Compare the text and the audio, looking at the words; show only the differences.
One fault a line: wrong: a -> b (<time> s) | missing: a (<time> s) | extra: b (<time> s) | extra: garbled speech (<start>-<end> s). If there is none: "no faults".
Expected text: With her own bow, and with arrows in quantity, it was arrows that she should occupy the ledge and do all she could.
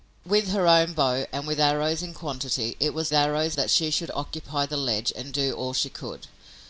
no faults